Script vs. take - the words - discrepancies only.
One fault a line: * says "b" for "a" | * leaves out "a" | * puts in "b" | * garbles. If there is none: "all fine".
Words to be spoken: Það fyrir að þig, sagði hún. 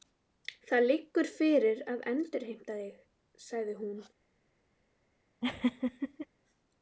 * puts in "liggur"
* puts in "endurheimta"